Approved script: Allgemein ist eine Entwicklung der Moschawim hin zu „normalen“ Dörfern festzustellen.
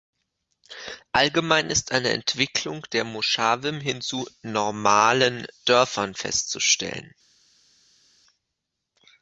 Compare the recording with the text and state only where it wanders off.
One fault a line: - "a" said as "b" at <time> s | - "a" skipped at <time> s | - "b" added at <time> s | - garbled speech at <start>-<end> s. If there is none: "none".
none